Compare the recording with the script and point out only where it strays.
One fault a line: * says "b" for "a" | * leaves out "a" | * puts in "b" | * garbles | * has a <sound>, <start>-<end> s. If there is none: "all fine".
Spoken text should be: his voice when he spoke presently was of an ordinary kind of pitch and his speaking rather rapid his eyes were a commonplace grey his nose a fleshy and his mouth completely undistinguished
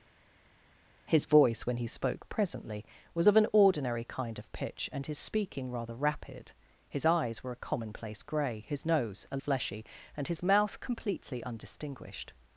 all fine